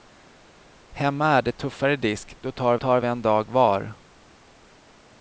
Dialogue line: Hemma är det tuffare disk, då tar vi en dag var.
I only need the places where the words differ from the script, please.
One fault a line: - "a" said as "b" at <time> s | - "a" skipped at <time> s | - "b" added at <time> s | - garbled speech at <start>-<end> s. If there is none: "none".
- "tar" added at 2.8 s